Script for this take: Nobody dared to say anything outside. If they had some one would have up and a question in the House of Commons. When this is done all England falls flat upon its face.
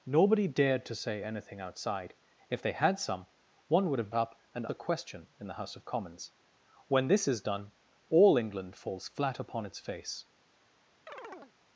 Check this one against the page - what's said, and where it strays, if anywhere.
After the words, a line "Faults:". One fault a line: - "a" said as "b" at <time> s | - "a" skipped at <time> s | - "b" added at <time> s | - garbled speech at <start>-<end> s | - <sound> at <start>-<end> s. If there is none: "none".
Nobody dared to say anything outside. If they had some one would have up and a question in the House of Commons. When this is done all England falls flat upon its face.
Faults:
- chirp at 11.1-11.5 s